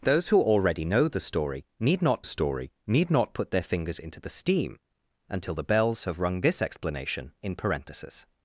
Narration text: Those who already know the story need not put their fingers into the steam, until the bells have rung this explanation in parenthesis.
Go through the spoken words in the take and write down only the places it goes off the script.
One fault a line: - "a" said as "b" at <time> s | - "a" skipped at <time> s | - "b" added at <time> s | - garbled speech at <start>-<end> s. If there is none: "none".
- "story need not" added at 2.2 s